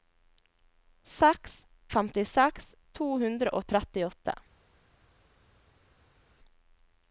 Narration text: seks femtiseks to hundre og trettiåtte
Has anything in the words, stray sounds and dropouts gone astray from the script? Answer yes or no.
no